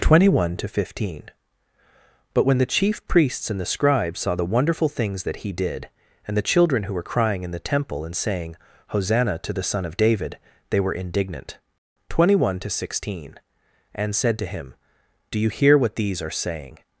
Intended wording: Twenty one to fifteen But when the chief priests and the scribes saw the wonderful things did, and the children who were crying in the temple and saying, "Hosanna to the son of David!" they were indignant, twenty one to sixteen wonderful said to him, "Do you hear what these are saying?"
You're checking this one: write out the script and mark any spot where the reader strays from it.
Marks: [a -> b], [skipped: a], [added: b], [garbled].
Twenty one to fifteen But when the chief priests and the scribes saw the wonderful things [added: that he] did, and the children who were crying in the temple and saying, "Hosanna to the son of David!" they were indignant, twenty one to sixteen [wonderful -> and] said to him, "Do you hear what these are saying?"